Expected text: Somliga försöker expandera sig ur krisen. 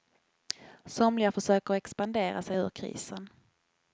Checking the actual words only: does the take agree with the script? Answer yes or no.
yes